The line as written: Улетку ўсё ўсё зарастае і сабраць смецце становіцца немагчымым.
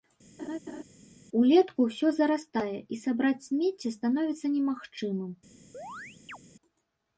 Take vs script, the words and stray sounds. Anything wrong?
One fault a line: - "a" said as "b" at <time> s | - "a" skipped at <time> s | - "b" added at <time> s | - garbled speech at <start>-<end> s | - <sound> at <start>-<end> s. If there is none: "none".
- laugh at 0.4-0.8 s
- "ўсё" skipped at 2.1 s
- chirp at 5.7-6.4 s